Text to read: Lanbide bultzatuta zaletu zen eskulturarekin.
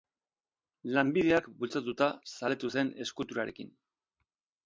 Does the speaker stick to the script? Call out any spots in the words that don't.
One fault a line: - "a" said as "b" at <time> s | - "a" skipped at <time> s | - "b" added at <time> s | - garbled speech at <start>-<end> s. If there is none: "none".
- "hark" added at 1.4 s